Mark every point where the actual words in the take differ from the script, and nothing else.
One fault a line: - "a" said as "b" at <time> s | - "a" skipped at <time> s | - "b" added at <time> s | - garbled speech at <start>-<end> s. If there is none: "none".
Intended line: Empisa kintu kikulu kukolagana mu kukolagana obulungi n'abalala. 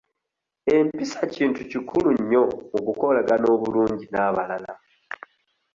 - "kukolagana" said as "nnyo" at 2.2 s